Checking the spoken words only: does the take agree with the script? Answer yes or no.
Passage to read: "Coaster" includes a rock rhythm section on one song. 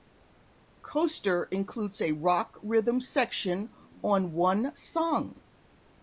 yes